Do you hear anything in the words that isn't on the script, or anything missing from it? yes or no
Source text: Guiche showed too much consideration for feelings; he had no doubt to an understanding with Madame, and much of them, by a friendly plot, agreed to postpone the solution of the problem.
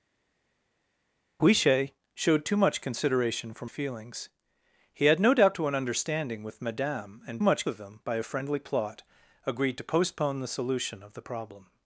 no